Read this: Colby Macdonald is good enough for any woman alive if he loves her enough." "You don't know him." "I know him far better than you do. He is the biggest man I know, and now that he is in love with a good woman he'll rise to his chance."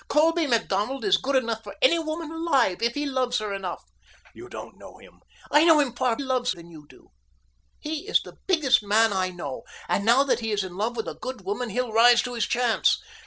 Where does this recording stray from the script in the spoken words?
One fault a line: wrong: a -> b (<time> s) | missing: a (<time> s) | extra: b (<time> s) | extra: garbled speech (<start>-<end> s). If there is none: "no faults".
wrong: better -> loves (6.2 s)